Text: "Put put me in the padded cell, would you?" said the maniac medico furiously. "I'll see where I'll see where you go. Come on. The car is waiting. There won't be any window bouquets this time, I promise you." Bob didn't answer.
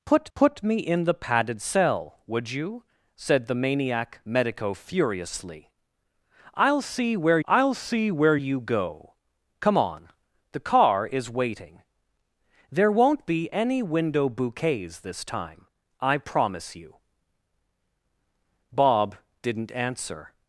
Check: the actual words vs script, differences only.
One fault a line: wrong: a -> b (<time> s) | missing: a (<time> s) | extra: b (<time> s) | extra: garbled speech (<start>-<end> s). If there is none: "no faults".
no faults